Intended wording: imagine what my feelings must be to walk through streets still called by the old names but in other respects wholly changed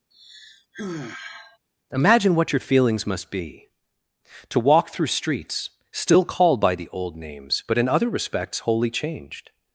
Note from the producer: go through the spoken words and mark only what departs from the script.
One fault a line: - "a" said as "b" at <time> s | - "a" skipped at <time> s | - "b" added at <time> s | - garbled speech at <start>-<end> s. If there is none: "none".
- "my" said as "your" at 2.5 s